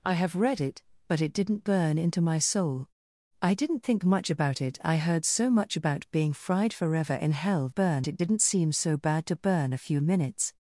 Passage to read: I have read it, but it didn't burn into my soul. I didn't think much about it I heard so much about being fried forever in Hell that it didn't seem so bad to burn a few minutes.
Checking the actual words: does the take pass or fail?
fail